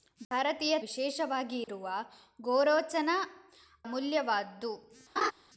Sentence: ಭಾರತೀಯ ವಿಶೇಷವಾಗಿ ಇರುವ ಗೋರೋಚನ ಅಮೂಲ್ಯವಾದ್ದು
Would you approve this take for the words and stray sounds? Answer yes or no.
no